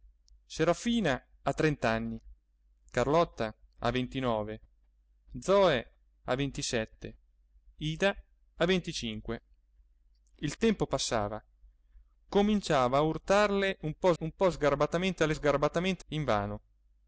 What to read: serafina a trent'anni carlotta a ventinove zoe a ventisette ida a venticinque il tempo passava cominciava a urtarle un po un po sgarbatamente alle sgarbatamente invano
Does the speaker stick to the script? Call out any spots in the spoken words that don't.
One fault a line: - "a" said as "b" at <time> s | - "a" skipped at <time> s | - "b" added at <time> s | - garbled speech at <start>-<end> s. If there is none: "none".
none